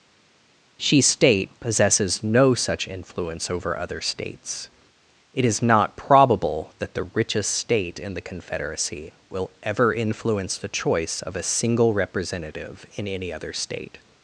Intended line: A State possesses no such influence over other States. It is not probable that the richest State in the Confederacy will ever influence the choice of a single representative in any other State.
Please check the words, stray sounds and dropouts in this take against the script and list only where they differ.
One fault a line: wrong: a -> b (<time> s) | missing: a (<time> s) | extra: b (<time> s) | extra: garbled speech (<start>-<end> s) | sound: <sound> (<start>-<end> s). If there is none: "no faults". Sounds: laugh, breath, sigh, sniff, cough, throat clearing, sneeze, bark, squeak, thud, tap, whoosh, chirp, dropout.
wrong: A -> She (0.8 s)